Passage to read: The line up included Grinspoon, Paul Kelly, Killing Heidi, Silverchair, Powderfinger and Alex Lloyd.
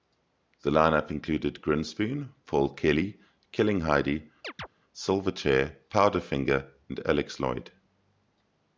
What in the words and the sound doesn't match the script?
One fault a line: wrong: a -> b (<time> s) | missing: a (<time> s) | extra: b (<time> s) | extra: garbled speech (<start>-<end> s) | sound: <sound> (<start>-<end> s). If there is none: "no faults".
sound: chirp (4.4-4.7 s)